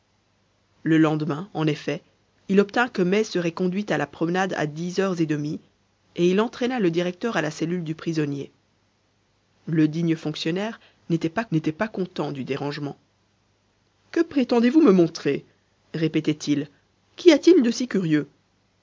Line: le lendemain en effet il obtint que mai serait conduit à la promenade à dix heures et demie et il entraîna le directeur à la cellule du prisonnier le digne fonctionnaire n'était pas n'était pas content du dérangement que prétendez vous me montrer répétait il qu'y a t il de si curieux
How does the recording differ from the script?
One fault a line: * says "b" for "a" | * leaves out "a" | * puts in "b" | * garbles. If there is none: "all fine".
all fine